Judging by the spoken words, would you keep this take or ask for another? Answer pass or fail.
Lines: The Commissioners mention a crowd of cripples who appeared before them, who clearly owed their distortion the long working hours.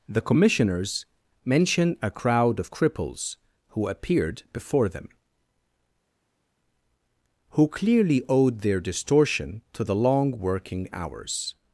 fail